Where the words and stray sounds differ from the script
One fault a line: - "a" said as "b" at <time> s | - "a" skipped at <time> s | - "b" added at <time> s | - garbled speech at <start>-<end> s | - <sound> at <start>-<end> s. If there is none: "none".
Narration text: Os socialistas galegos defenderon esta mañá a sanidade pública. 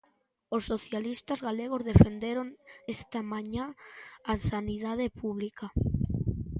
none